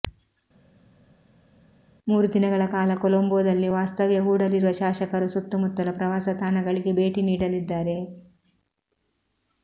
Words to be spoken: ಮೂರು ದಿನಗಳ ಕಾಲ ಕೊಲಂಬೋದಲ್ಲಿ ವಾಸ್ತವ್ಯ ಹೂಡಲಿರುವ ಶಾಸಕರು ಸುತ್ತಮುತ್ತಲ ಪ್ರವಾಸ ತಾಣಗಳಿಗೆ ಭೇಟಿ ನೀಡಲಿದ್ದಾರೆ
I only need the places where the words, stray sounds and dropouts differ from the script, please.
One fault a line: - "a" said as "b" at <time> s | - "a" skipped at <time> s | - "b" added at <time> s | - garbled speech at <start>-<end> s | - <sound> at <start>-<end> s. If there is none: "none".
none